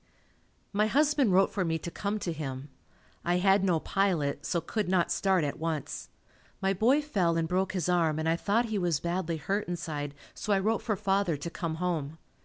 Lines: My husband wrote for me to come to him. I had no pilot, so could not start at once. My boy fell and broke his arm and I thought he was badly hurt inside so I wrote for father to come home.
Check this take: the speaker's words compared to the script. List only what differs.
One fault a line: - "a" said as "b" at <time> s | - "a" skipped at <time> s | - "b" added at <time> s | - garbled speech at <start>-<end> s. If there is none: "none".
none